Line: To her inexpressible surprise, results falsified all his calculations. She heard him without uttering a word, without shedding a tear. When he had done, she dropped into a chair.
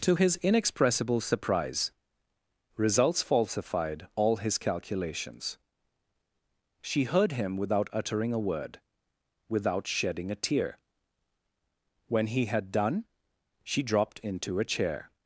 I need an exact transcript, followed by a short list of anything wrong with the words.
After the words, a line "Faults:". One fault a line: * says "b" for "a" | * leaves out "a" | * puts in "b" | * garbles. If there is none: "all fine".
To his inexpressible surprise, results falsified all his calculations. She heard him without uttering a word, without shedding a tear. When he had done, she dropped into a chair.
Faults:
* says "his" for "her"